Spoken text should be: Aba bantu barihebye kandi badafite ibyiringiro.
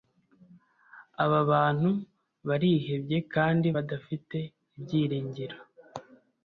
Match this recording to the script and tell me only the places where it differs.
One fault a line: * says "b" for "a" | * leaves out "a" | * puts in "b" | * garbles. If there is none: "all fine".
all fine